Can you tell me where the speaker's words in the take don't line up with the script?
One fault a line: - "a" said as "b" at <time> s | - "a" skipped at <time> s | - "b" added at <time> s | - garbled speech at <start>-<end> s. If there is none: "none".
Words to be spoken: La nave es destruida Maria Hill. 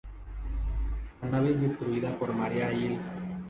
- "por" added at 2.2 s